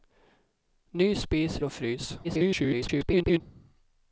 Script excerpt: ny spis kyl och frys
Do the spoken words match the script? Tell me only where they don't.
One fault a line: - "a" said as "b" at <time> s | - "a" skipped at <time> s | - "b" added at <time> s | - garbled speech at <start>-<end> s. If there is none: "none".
- "kyl" skipped at 1.6 s
- garbled speech at 2.2-3.4 s